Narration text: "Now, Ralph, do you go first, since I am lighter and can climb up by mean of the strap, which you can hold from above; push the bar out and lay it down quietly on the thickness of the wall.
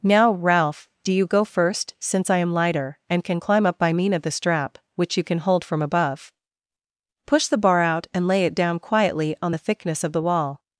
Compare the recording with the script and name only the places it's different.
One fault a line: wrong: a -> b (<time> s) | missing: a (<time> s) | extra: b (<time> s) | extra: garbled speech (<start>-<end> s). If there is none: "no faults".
no faults